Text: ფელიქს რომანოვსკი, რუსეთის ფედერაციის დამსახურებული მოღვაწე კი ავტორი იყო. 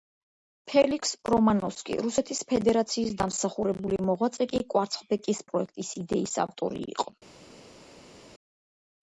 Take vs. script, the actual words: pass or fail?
fail